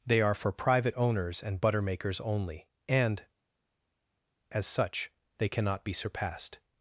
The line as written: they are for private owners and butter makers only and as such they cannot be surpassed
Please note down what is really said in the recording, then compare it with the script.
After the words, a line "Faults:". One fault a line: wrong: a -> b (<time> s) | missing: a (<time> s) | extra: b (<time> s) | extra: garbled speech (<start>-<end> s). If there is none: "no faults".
they are for private owners and butter makers only and as such they cannot be surpassed
Faults:
no faults